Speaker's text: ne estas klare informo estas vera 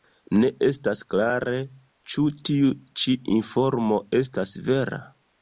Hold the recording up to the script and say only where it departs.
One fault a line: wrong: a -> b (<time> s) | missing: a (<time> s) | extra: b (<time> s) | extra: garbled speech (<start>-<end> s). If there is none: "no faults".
extra: ĉu tiu ĉi (2.1 s)